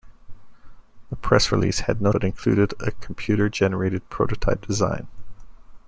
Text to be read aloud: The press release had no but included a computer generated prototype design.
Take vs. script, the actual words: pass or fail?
pass